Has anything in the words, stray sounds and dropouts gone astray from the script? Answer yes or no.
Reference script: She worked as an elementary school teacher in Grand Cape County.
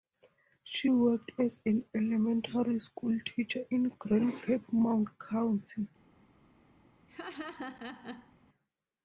yes